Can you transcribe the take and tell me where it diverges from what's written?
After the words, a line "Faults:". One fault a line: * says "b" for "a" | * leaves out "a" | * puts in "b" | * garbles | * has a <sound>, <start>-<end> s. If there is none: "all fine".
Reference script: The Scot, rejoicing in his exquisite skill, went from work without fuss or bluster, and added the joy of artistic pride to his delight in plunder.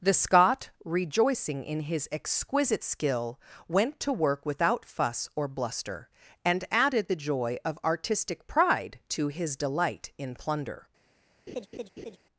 The Scot, rejoicing in his exquisite skill, went to work without fuss or bluster, and added the joy of artistic pride to his delight in plunder.
Faults:
* says "to" for "from"
* has a laugh, 11.5-12.2 s